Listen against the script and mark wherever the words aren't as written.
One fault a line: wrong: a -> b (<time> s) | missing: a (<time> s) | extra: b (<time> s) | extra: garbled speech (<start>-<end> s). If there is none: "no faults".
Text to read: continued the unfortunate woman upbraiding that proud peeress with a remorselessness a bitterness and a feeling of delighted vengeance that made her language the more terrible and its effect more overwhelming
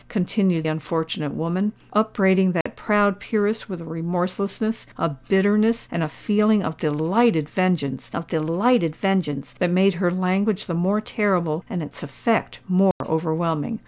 missing: the (0.7 s)
extra: of delighted vengeance (8.1 s)